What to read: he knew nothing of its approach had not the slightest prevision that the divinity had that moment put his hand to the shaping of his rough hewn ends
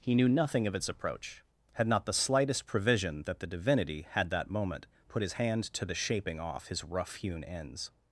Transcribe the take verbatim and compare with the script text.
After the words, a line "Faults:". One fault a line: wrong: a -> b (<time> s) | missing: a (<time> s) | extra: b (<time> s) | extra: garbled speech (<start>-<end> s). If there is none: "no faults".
he knew nothing of its approach had not the slightest prevision that the divinity had that moment put his hand to the shaping off his rough hewn ends
Faults:
wrong: of -> off (6.4 s)